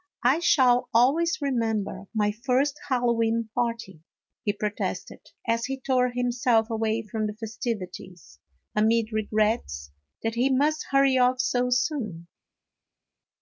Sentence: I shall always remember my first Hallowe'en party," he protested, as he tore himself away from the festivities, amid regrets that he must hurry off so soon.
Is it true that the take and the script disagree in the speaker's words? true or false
false